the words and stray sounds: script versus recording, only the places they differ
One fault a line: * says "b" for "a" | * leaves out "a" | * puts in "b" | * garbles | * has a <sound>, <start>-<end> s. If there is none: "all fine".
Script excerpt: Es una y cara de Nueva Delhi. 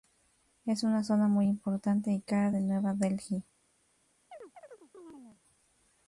* puts in "zona muy importante"
* has a chirp, 4.3-5.4 s